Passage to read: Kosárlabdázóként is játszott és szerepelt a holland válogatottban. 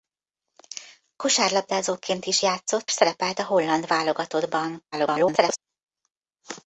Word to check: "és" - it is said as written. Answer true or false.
false